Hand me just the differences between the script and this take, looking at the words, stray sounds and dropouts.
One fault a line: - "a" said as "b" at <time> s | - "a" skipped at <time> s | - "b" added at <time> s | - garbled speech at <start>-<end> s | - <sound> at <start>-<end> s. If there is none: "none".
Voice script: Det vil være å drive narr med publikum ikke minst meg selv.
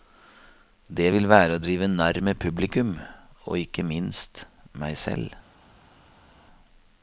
- "og" added at 3.5 s